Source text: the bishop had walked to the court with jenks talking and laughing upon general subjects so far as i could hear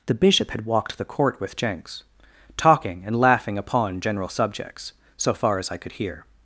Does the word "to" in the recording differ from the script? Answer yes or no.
yes